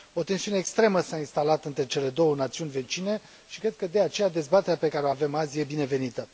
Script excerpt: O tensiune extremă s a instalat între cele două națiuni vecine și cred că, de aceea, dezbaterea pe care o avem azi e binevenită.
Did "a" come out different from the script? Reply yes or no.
no